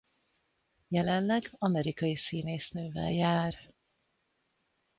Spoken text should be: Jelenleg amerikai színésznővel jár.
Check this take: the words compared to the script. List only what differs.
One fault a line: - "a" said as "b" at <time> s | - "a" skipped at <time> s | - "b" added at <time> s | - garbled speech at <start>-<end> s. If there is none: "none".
none